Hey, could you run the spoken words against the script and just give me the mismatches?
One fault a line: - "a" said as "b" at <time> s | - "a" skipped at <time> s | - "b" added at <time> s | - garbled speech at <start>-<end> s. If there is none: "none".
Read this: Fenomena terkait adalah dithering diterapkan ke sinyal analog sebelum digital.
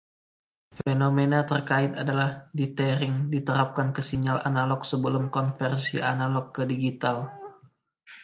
- "konversi analog ke" added at 5.3 s